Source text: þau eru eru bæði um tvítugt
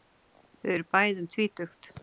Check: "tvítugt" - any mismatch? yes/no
no